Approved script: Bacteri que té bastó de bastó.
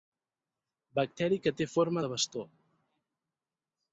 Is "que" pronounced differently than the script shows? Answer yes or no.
no